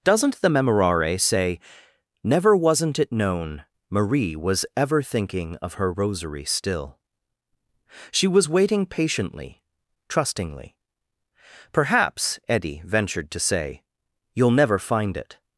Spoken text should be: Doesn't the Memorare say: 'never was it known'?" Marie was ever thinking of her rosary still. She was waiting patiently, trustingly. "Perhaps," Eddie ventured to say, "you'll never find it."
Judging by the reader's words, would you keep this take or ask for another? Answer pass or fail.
fail